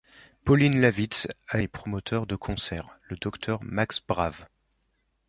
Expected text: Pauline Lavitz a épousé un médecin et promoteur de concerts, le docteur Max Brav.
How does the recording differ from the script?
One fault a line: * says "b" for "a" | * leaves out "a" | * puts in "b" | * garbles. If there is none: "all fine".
* leaves out "épousé un médecin"